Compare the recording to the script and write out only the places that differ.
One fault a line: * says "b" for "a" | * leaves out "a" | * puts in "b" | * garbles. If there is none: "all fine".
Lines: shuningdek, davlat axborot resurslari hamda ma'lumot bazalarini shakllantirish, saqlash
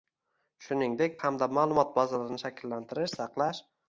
* leaves out "davlat axborot resurslari"